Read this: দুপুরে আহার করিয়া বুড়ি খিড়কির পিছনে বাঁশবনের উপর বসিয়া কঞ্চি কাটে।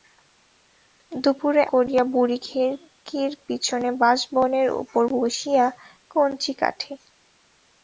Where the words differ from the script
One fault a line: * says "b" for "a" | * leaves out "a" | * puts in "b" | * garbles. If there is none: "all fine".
* leaves out "আহার"